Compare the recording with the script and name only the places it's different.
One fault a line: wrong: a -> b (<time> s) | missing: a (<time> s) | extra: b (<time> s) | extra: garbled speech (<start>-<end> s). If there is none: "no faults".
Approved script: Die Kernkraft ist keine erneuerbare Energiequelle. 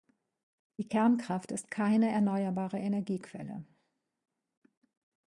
no faults